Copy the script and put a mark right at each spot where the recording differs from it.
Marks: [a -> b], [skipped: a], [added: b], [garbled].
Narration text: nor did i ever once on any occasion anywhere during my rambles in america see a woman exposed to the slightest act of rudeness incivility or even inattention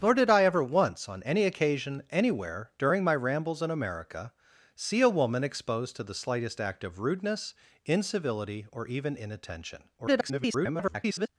nor did i ever once on any occasion anywhere during my rambles in america see a woman exposed to the slightest act of rudeness incivility or even inattention [garbled]